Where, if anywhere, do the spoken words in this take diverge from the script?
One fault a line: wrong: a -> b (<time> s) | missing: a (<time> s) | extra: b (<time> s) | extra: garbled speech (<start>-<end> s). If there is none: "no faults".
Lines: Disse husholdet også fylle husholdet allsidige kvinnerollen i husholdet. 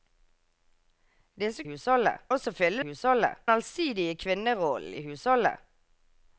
no faults